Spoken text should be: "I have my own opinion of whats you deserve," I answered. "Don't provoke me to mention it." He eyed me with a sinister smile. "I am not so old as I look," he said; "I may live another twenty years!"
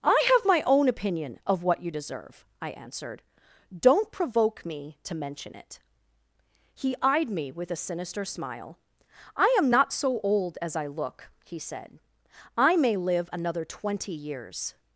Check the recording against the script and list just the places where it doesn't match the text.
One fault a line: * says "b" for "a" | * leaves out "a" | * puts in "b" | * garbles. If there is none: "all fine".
* says "what" for "whats"